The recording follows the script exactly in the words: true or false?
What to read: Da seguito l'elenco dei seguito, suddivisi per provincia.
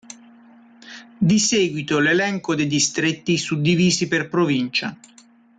false